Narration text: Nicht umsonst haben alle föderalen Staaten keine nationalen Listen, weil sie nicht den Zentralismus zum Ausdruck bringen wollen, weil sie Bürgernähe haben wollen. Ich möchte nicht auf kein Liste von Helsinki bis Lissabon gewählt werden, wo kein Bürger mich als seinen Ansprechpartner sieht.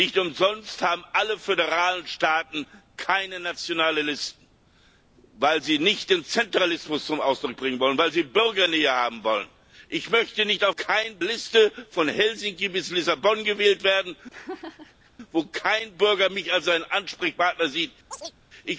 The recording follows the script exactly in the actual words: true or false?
true